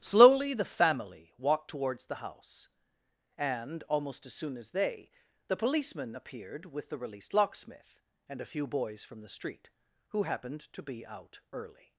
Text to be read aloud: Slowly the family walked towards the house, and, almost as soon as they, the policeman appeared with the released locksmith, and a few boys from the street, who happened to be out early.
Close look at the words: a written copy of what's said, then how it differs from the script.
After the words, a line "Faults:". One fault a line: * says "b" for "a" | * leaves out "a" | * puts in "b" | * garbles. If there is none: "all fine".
Slowly the family walked towards the house, and, almost as soon as they, the policeman appeared with the released locksmith, and a few boys from the street, who happened to be out early.
Faults:
all fine